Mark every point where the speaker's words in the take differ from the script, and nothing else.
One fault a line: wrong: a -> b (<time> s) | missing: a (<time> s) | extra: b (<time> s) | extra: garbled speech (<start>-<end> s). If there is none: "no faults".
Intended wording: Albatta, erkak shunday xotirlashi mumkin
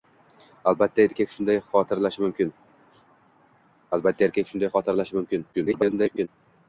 extra: garbled speech (5.5-6.3 s)